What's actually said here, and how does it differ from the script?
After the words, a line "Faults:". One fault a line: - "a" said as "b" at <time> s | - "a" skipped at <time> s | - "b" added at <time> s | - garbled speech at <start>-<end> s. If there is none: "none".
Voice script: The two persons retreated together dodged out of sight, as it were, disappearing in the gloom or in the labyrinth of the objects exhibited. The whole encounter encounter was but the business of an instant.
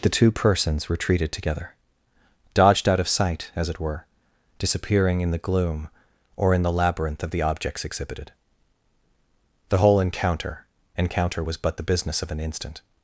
The two persons retreated together dodged out of sight, as it were, disappearing in the gloom or in the labyrinth of the objects exhibited. The whole encounter encounter was but the business of an instant.
Faults:
none